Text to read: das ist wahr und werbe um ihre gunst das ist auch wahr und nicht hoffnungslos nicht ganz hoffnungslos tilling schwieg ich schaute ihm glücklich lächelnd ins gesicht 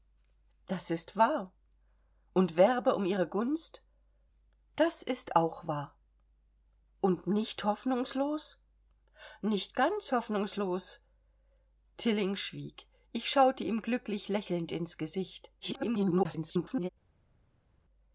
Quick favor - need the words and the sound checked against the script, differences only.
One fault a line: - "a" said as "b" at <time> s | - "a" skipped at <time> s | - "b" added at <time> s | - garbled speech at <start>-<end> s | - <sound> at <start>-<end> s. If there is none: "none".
- garbled speech at 15.6-16.9 s